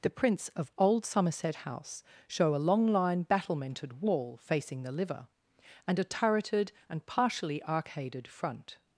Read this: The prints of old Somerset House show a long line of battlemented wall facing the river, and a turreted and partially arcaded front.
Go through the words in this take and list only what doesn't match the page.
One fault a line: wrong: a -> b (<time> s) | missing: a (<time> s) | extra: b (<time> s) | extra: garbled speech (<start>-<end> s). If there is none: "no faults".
missing: of (3.2 s)
wrong: river -> liver (4.9 s)